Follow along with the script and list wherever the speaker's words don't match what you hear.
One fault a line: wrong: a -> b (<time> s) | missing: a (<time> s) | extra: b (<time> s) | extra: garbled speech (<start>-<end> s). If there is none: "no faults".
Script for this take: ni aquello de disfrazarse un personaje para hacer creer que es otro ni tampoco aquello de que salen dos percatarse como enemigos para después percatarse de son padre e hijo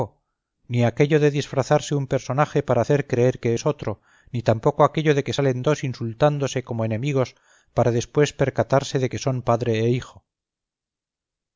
wrong: percatarse -> insultándose (5.9 s)
extra: que (9.1 s)